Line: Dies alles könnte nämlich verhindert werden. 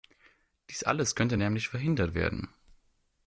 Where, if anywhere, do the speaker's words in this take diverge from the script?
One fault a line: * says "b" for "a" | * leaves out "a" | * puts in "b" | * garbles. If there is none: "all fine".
all fine